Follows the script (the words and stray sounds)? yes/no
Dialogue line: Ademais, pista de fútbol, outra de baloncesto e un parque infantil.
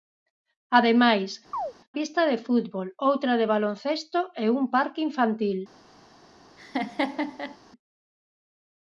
no